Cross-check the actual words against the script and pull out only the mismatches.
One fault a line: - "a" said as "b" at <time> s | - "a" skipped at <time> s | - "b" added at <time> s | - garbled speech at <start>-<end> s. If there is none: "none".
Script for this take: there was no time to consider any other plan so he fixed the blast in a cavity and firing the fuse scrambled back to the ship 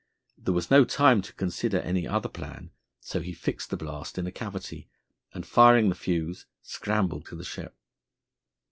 - "back" skipped at 7.3 s